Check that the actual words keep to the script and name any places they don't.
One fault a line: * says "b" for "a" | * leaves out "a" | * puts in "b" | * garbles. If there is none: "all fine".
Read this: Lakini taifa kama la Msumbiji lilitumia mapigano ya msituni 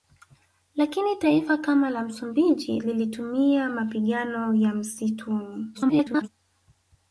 * garbles